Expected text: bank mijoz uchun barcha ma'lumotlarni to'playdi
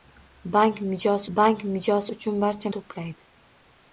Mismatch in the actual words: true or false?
true